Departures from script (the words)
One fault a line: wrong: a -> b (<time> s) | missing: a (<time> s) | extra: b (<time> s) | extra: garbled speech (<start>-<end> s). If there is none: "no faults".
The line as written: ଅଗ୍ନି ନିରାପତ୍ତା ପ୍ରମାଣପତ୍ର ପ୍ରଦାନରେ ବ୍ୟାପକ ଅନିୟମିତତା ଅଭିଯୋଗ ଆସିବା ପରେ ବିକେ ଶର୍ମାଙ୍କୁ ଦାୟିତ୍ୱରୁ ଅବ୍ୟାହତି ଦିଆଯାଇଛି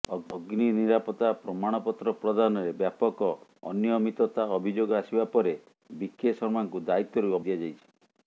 missing: ଅବ୍ୟାହତି (7.4 s)